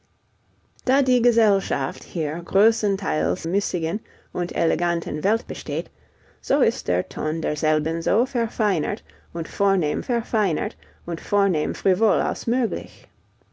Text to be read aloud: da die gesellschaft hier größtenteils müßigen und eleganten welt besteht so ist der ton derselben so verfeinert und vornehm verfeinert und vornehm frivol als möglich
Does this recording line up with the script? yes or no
yes